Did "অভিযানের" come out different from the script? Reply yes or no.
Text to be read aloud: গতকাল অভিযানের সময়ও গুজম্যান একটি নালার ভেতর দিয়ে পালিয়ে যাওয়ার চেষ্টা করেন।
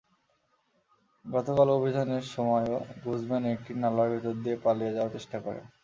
no